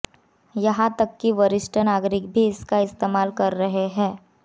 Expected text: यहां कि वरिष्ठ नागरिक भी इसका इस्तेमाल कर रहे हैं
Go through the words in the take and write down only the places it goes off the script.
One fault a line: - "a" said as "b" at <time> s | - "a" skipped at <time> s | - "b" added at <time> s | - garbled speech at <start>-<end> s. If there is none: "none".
- "तक" added at 1.0 s